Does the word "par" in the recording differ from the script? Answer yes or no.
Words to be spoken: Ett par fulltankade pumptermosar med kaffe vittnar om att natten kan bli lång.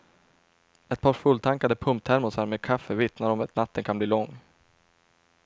no